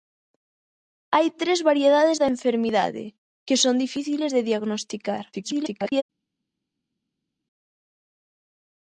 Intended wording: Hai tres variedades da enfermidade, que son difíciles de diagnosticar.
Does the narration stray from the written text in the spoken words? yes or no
yes